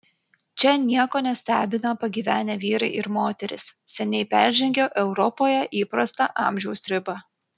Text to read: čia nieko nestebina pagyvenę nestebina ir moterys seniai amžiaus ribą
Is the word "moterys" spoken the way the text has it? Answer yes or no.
yes